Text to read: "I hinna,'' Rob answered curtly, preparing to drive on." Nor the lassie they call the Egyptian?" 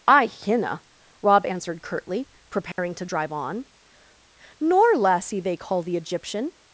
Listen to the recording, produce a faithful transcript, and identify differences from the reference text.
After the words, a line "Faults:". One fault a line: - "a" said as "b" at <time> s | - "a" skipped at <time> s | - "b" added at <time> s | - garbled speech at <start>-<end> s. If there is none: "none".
"I hinna,'' Rob answered curtly, preparing to drive on." Nor lassie they call the Egyptian?"
Faults:
- "the" skipped at 5.0 s